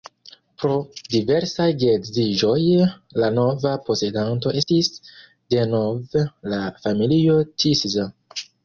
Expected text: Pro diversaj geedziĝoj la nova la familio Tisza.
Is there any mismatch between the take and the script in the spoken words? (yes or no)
yes